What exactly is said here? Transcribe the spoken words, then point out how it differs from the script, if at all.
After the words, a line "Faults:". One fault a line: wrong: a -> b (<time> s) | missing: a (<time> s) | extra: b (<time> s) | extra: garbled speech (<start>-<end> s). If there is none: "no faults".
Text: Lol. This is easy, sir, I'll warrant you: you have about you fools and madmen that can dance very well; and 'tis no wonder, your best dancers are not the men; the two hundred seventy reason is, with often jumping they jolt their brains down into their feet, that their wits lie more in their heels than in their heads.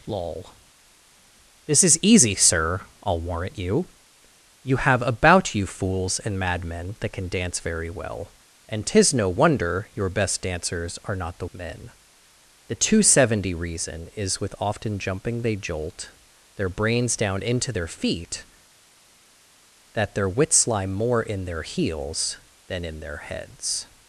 Lol. This is easy, sir, I'll warrant you: you have about you fools and madmen that can dance very well; and 'tis no wonder, your best dancers are not the men; the two hundred seventy reason is, with often jumping they jolt their brains down into their feet, that their wits lie more in their heels than in their heads.
Faults:
no faults